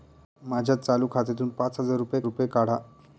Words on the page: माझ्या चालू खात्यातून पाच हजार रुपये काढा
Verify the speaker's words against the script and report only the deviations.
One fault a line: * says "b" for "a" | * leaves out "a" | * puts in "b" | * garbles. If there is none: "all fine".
* puts in "रुपये"